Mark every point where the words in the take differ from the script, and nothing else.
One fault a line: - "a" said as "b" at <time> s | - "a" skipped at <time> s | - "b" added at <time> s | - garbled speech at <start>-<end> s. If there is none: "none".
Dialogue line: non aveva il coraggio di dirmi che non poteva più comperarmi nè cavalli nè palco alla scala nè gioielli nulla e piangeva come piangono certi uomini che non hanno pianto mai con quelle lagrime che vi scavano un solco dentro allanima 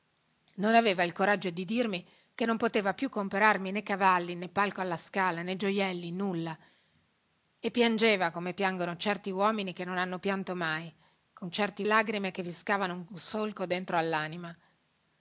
- "quelle" said as "certi" at 11.5 s